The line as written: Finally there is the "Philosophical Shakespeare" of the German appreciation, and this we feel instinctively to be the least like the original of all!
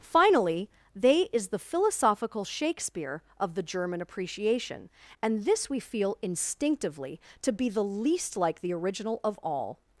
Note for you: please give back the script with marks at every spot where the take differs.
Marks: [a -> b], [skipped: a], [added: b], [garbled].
Finally [there -> they] is the "Philosophical Shakespeare" of the German appreciation, and this we feel instinctively to be the least like the original of all!